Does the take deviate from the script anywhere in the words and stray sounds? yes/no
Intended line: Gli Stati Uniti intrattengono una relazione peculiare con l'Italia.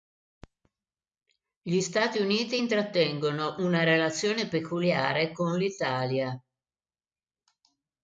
no